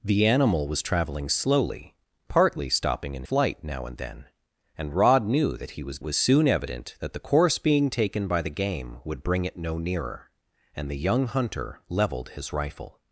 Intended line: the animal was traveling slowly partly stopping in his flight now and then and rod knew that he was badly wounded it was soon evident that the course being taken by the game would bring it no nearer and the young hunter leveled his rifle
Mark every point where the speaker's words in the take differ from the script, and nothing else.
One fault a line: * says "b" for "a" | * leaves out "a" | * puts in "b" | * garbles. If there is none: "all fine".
* leaves out "his"
* leaves out "badly wounded it"